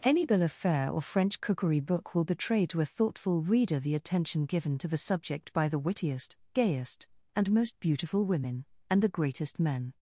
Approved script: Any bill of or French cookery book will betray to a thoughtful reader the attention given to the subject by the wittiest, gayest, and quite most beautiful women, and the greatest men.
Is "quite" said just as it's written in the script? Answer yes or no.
no